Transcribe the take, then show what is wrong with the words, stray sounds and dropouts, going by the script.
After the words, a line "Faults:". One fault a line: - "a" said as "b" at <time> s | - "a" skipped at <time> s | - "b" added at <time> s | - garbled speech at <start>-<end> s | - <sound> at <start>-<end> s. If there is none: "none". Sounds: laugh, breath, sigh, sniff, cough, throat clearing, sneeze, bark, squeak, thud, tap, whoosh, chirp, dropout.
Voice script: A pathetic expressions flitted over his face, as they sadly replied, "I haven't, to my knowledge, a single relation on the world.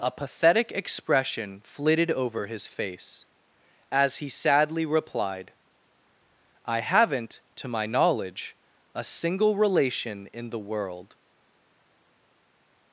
A pathetic expression flitted over his face, as he sadly replied, "I haven't, to my knowledge, a single relation in the world.
Faults:
- "expressions" said as "expression" at 0.7 s
- "they" said as "he" at 4.2 s
- "on" said as "in" at 10.3 s